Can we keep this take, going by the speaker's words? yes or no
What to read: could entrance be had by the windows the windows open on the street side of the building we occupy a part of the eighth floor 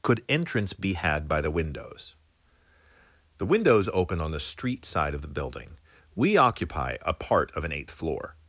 no